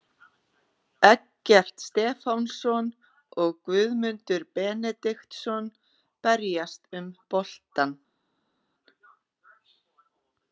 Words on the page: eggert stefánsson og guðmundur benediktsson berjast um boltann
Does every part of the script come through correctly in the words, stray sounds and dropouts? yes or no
yes